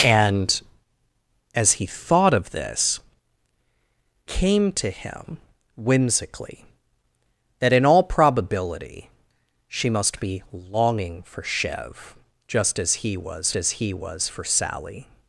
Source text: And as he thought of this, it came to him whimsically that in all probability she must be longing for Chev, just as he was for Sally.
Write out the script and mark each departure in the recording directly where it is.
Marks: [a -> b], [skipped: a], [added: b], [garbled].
And as he thought of this, [skipped: it] came to him whimsically that in all probability she must be longing for Chev, just as he was [added: as he was] for Sally.